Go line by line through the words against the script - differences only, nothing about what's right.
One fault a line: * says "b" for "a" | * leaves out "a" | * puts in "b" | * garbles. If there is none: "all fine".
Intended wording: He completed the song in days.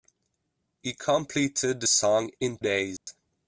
all fine